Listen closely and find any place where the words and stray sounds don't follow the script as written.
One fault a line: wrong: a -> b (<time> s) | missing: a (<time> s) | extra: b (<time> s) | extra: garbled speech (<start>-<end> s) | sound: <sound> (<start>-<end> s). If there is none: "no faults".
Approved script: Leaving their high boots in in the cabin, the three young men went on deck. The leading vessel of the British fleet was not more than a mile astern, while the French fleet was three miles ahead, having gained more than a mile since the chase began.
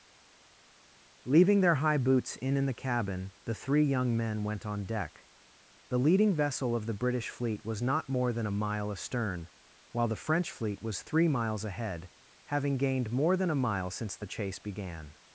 no faults